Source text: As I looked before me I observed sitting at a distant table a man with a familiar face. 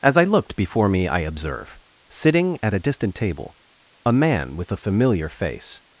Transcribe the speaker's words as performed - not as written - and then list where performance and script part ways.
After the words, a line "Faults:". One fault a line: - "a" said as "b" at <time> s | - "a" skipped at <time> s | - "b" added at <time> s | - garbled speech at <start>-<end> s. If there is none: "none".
As I looked before me I observe sitting at a distant table a man with a familiar face.
Faults:
- "observed" said as "observe" at 1.2 s